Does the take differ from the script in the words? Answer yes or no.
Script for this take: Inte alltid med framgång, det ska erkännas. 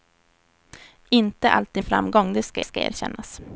yes